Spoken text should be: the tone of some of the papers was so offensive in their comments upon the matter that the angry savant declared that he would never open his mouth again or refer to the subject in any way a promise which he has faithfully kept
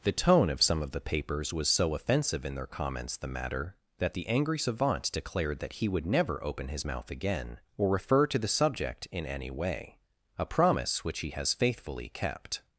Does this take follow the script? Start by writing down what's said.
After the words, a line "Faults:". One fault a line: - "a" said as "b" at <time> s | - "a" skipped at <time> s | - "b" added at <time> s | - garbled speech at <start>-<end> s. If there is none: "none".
the tone of some of the papers was so offensive in their comments the matter that the angry savant declared that he would never open his mouth again or refer to the subject in any way a promise which he has faithfully kept
Faults:
- "upon" skipped at 3.2 s